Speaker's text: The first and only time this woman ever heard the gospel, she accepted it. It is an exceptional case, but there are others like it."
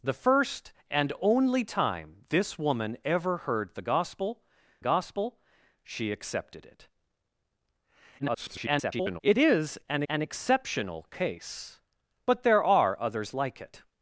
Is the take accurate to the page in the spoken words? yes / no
no